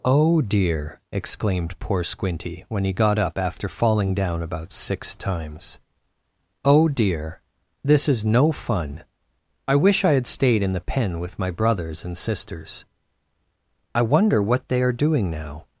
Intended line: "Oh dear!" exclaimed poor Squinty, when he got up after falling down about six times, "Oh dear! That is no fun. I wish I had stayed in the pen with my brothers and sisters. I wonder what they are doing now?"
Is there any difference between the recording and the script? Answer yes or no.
yes